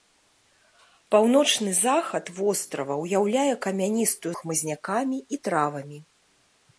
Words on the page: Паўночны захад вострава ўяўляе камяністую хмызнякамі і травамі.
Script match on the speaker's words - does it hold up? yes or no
yes